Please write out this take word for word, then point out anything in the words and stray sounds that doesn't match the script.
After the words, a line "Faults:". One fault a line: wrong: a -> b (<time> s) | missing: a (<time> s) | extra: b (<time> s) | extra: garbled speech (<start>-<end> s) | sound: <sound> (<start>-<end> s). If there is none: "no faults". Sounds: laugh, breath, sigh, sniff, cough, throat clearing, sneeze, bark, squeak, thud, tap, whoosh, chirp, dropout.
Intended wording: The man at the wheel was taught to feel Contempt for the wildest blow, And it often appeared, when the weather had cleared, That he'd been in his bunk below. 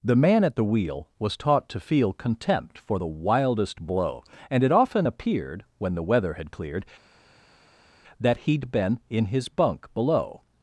The man at the wheel was taught to feel Contempt for the wildest blow, And it often appeared, when the weather had cleared, That he'd been in his bunk below.
Faults:
no faults